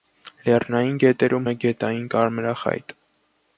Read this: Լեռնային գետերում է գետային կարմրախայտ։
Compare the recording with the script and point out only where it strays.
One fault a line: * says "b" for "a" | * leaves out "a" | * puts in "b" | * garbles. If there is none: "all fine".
all fine